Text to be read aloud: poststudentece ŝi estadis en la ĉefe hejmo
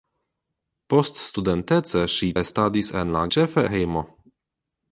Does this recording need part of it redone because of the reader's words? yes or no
no